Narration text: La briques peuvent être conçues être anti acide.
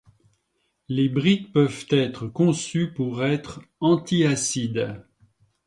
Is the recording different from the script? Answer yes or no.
yes